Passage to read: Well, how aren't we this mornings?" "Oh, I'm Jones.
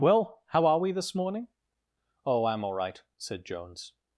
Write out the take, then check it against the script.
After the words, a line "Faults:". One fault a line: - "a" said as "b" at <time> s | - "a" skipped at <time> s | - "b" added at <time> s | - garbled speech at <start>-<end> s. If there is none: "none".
Well, how are we this morning?" "Oh, I'm all right," said Jones.
Faults:
- "aren't" said as "are" at 0.7 s
- "mornings" said as "morning" at 1.1 s
- "all right said" added at 2.6 s